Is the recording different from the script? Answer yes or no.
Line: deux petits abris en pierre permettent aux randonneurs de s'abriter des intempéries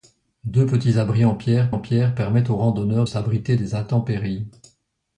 yes